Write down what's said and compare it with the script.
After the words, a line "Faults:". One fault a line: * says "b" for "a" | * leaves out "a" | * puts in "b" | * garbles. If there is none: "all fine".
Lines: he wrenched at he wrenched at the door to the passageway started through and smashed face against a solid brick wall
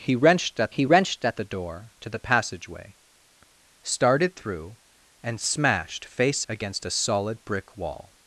he wrenched at he wrenched at the door to the passageway started through and smashed face against a solid brick wall
Faults:
all fine